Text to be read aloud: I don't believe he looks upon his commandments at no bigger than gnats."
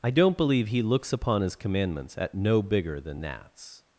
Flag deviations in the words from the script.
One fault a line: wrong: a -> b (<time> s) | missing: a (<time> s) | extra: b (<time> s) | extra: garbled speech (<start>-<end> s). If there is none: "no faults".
no faults